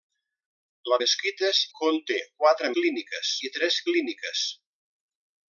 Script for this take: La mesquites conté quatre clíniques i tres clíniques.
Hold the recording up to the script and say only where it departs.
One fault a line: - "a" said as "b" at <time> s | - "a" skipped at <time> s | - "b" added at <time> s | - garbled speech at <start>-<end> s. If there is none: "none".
none